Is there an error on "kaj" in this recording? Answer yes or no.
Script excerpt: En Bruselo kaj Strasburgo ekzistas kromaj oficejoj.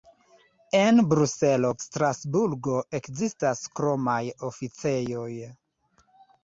yes